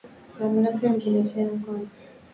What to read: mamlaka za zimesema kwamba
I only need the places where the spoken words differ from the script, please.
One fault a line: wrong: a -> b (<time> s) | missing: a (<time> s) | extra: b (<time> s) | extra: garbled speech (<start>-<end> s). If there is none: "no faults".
no faults